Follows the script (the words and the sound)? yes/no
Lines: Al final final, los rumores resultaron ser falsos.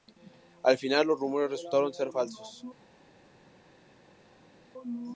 no